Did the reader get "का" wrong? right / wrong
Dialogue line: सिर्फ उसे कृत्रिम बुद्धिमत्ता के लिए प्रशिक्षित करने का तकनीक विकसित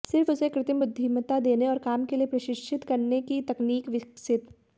wrong